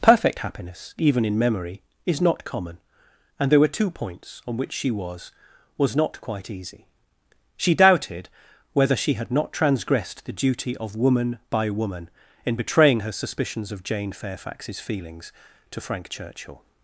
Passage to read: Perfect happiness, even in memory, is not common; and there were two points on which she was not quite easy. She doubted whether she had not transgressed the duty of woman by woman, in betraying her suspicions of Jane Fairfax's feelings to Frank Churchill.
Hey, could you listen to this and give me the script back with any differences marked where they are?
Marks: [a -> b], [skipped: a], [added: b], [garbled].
Perfect happiness, even in memory, is not common; and there were two points on which she was [added: was] not quite easy. She doubted whether she had not transgressed the duty of woman by woman, in betraying her suspicions of Jane Fairfax's feelings to Frank Churchill.